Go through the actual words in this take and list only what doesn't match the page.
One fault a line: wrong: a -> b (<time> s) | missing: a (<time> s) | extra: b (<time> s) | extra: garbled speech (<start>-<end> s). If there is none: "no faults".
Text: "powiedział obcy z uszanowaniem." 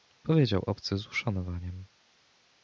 no faults